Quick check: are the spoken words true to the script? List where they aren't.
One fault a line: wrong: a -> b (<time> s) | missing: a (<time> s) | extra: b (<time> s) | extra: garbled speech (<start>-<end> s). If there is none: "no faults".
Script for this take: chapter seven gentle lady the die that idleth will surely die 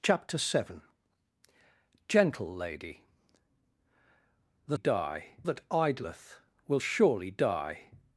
no faults